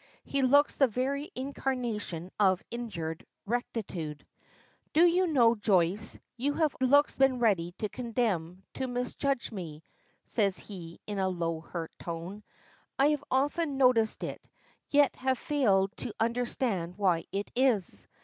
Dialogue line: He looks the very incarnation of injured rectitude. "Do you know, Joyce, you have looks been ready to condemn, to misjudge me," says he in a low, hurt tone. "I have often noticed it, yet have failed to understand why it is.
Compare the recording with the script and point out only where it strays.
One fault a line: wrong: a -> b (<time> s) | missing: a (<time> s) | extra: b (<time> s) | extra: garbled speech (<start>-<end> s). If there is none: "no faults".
no faults